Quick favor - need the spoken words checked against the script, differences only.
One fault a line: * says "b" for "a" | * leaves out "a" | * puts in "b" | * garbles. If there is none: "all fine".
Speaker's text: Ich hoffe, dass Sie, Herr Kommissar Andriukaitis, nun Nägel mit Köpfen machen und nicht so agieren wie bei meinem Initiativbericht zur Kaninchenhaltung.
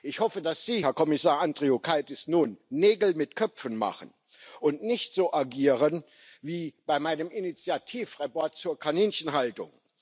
all fine